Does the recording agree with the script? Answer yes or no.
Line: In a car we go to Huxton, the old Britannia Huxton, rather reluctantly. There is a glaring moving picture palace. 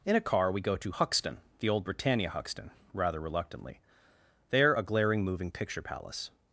no